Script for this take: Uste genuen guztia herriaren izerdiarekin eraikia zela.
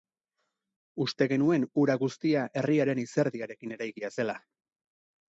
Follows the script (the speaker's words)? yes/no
no